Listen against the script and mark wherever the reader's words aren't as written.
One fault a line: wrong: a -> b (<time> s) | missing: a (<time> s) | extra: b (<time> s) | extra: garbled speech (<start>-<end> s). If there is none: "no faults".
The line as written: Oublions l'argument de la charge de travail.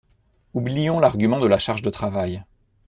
no faults